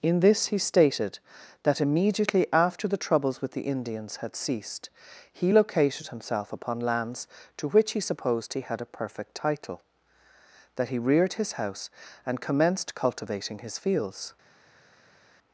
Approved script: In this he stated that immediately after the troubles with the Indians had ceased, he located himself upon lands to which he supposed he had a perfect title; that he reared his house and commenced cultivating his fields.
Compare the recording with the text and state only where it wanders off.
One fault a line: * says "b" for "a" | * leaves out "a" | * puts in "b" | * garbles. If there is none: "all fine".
all fine